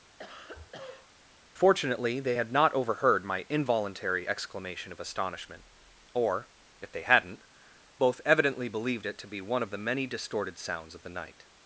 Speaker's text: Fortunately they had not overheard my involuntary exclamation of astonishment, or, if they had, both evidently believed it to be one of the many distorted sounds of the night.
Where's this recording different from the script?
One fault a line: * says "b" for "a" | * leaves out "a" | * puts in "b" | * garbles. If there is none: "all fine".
* says "hadn't" for "had"